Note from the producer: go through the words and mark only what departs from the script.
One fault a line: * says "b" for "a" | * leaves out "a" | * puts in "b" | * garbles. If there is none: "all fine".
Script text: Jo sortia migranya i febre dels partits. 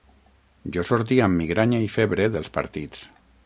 * puts in "amb"